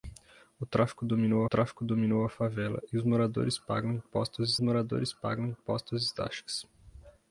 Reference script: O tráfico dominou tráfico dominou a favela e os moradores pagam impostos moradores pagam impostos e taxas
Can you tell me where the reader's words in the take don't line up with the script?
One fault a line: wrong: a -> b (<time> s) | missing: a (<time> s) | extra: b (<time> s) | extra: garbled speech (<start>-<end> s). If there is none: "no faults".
no faults